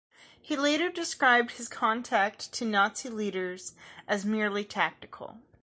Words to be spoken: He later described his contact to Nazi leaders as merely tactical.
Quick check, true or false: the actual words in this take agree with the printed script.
true